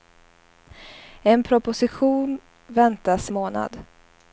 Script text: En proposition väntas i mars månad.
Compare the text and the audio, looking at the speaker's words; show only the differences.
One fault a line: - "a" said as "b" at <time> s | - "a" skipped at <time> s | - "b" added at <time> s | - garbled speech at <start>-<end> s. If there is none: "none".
- "i mars" skipped at 3.3 s